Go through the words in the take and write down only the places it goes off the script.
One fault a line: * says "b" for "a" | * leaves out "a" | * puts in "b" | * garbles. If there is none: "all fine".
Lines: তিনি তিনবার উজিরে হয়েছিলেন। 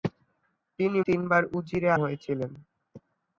all fine